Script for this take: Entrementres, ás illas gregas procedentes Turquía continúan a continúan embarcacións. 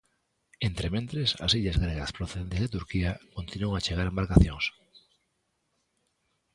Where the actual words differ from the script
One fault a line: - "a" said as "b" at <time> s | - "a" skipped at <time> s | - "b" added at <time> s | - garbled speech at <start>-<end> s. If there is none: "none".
- "de" added at 2.6 s
- "continúan" said as "chegar" at 3.9 s